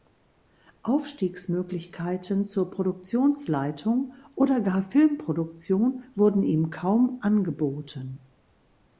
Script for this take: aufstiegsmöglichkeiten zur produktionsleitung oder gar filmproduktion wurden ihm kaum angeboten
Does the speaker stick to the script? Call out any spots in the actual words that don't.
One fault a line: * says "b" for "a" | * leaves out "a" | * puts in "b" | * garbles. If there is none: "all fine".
all fine